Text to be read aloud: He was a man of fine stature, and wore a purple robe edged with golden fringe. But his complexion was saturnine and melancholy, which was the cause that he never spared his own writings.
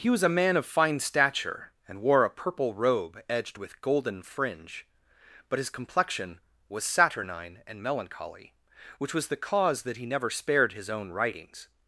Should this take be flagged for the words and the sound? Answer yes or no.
no